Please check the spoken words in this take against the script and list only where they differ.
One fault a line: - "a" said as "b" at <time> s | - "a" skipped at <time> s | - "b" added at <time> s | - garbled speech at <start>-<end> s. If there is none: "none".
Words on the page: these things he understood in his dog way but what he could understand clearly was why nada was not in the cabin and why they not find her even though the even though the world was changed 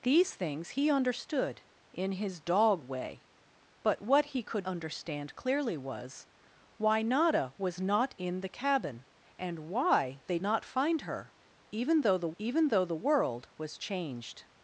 none